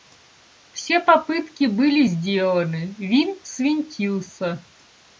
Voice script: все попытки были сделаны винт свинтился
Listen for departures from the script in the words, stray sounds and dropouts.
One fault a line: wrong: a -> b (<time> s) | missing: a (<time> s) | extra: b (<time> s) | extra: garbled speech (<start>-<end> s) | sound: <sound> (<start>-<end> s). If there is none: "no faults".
no faults